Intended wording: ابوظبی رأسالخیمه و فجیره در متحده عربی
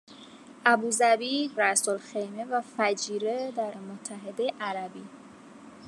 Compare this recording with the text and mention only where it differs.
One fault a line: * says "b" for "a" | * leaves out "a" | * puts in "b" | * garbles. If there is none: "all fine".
all fine